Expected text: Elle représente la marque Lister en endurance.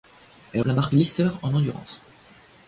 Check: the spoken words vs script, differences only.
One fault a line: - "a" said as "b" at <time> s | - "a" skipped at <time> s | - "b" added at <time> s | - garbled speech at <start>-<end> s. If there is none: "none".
- "représente" skipped at 0.6 s